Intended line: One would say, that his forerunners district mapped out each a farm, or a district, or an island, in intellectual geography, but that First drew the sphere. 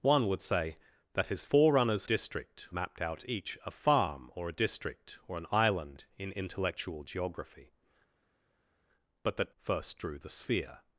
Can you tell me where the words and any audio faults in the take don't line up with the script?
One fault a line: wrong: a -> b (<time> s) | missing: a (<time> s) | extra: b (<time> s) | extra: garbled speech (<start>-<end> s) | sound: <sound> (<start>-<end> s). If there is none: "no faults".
no faults